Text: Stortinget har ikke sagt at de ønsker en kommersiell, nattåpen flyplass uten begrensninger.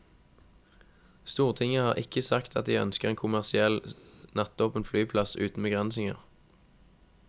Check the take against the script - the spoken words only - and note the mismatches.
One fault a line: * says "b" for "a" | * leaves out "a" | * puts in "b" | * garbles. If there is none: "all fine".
all fine